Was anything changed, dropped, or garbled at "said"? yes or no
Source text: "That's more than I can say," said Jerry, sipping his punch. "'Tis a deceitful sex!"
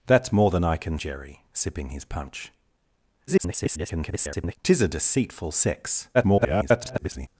yes